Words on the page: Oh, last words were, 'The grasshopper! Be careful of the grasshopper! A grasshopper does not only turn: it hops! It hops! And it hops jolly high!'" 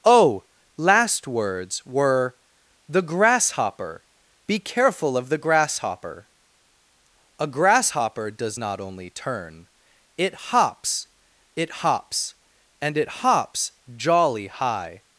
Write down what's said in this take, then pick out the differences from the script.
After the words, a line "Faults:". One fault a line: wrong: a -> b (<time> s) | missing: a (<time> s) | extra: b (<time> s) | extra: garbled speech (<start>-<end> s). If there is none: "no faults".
Oh, last words were, 'The grasshopper! Be careful of the grasshopper! A grasshopper does not only turn: it hops! It hops! And it hops jolly high!'"
Faults:
no faults